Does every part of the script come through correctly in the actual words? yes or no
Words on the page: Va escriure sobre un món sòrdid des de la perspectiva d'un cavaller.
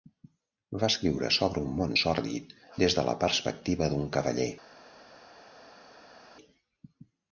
yes